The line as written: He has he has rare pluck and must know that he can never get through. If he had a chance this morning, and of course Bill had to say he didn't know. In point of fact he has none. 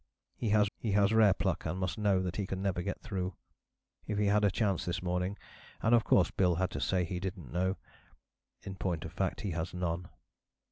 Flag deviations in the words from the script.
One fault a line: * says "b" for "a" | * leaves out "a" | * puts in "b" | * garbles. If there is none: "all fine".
all fine